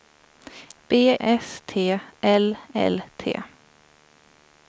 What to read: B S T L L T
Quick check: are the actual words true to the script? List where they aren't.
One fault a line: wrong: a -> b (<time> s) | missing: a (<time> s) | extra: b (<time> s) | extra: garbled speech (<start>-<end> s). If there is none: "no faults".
no faults